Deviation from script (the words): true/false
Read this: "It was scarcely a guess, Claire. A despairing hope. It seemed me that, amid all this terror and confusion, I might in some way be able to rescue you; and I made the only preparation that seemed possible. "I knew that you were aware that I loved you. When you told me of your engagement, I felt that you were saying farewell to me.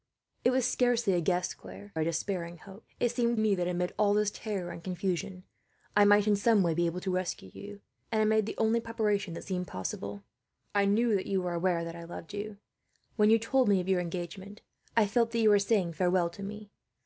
false